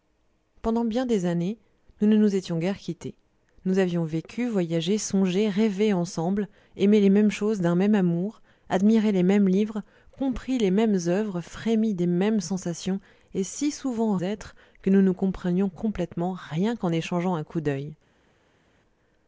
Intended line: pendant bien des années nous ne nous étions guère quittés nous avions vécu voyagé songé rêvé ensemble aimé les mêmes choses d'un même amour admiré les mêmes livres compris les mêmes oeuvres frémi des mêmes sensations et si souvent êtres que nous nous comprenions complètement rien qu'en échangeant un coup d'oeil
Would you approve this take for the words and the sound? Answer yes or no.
yes